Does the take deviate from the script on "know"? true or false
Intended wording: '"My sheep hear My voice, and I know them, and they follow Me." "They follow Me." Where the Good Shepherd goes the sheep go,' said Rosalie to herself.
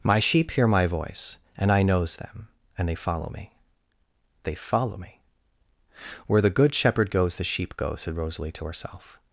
true